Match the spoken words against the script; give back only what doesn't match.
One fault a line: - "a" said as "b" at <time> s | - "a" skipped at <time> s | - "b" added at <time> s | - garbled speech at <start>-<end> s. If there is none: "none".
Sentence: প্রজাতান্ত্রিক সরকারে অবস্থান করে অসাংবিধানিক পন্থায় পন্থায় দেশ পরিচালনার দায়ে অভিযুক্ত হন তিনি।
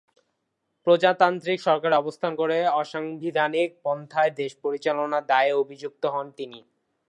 - "পন্থায়" skipped at 4.3 s